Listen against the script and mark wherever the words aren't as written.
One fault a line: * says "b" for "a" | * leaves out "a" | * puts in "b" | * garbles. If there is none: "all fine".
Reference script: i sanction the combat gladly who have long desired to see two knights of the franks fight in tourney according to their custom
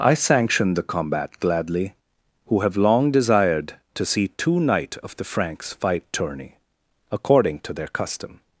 * says "knight" for "knights"
* leaves out "in"